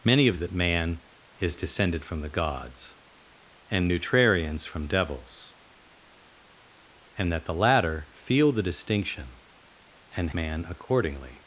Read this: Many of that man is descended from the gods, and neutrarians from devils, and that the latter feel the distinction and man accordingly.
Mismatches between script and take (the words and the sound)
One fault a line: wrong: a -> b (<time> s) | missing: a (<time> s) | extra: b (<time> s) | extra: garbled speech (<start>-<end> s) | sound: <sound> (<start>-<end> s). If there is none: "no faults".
no faults